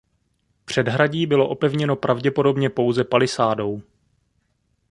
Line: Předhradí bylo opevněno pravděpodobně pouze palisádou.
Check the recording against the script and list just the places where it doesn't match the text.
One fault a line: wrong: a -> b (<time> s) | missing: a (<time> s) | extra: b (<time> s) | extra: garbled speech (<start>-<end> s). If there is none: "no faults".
no faults